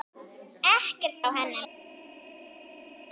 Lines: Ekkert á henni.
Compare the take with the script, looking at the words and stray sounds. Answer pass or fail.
pass